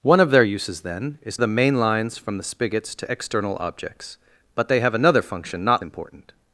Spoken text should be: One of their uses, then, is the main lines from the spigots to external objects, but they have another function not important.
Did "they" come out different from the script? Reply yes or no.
no